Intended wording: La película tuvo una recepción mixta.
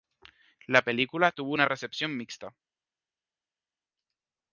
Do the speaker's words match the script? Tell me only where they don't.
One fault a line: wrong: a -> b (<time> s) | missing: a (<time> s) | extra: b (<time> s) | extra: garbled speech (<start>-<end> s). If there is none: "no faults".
no faults